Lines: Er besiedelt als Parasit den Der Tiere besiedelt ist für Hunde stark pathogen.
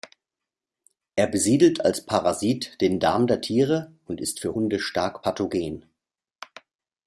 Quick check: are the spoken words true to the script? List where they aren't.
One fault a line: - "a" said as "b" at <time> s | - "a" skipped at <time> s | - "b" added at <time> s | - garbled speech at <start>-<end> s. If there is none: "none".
- "Darm" added at 3.0 s
- "besiedelt" said as "und" at 4.0 s